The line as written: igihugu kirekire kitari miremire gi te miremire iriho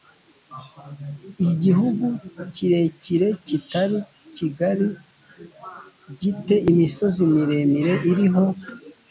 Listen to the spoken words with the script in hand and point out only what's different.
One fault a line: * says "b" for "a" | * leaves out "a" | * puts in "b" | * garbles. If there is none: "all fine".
* says "kigari" for "miremire"
* puts in "imisozi"